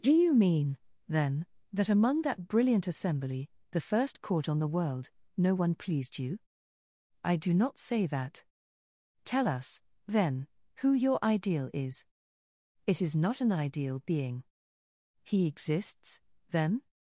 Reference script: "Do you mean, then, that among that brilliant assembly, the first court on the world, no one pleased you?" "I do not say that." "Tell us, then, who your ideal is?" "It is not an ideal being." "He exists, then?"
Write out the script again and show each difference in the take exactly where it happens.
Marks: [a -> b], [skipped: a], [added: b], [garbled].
"Do you mean, then, that among that brilliant assembly, the first court on the world, no one pleased you?" "I do not say that." "Tell us, then, who your ideal is?" "It is not an ideal being." "He exists, then?"